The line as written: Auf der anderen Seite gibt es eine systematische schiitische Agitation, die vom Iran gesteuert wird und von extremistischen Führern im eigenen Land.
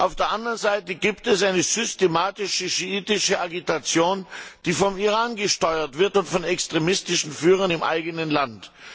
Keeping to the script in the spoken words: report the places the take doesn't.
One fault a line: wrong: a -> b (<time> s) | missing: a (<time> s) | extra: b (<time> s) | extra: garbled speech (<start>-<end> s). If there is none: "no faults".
no faults